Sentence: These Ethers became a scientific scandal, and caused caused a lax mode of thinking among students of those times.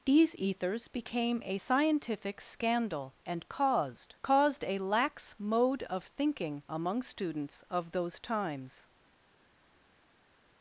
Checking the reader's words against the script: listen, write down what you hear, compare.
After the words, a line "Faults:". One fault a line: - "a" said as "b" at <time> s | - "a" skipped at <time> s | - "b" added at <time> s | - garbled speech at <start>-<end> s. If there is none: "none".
These Ethers became a scientific scandal, and caused caused a lax mode of thinking among students of those times.
Faults:
none